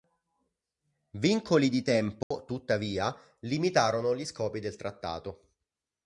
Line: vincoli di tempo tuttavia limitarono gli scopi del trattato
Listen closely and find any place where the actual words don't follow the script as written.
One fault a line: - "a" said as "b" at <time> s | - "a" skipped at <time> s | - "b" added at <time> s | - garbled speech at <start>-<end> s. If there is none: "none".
none